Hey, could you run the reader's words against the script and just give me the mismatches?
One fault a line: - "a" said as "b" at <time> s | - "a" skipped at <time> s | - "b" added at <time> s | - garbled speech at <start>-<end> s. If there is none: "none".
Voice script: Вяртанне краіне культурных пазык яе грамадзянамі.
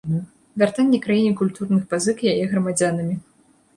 none